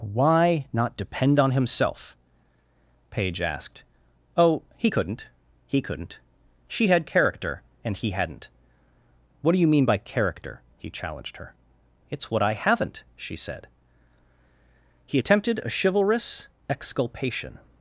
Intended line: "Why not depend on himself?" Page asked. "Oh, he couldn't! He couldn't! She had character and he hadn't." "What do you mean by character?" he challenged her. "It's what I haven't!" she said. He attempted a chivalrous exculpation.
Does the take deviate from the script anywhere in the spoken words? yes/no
no